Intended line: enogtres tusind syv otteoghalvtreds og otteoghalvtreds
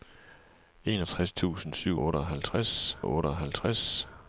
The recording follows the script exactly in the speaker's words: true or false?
true